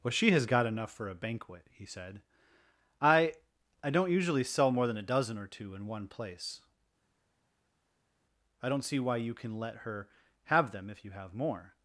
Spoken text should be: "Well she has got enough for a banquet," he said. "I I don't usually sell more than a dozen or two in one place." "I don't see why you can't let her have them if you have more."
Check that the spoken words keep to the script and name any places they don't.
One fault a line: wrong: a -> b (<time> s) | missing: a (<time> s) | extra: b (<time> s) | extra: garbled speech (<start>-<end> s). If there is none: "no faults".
wrong: can't -> can (9.3 s)